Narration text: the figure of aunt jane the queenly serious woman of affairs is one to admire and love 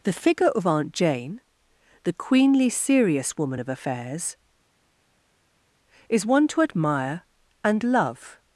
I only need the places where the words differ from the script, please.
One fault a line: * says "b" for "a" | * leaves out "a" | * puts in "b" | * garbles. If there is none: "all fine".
all fine